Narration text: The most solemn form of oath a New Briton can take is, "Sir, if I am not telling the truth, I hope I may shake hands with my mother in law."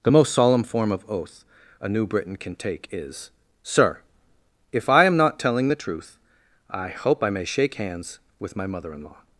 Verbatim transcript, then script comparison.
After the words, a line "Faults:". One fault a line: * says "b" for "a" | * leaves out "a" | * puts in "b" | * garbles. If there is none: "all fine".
The most solemn form of oath a New Briton can take is, "Sir, if I am not telling the truth, I hope I may shake hands with my mother in law."
Faults:
all fine